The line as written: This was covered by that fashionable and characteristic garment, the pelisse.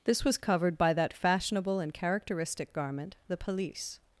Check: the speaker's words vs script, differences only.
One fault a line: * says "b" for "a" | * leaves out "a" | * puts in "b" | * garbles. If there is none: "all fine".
all fine